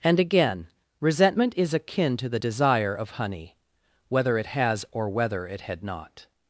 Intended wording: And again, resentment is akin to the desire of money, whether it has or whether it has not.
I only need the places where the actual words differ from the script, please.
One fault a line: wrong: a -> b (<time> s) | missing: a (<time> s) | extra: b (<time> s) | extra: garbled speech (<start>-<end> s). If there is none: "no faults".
wrong: money -> honey (3.1 s)
wrong: has -> had (5.6 s)